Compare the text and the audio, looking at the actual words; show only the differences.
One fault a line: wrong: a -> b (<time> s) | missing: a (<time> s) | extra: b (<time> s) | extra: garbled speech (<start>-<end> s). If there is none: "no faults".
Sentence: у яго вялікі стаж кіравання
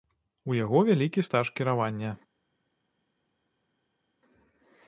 no faults